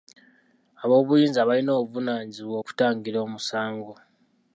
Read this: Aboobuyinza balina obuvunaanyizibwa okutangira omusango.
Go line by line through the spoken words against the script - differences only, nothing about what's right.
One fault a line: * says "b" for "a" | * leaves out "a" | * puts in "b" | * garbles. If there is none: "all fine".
all fine